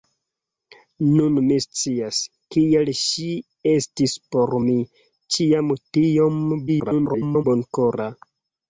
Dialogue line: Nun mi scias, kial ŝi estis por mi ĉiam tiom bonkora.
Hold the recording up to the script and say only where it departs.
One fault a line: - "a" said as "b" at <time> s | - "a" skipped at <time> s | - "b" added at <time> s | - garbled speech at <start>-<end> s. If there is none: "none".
- garbled speech at 6.7-7.4 s